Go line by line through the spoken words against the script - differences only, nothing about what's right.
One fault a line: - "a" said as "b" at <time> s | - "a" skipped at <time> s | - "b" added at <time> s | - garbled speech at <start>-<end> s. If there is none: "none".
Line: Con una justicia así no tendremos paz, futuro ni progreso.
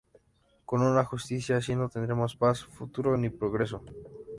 none